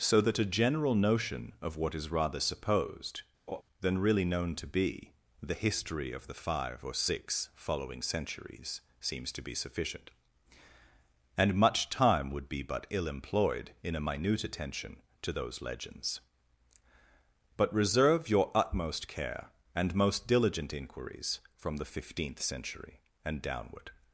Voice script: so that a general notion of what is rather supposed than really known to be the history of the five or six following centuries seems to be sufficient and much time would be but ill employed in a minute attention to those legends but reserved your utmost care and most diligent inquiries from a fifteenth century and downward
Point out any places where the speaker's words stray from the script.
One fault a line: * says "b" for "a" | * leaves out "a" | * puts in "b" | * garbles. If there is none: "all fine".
* says "reserve" for "reserved"
* says "the" for "a"